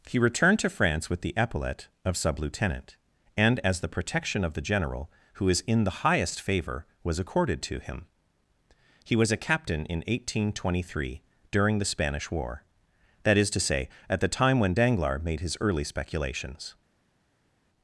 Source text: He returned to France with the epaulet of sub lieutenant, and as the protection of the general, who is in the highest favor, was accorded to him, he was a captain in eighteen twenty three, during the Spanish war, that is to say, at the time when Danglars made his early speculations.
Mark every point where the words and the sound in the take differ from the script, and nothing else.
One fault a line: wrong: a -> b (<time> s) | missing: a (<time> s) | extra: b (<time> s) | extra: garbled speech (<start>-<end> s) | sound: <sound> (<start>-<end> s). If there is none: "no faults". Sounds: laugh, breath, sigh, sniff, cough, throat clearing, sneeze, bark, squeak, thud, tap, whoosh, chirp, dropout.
no faults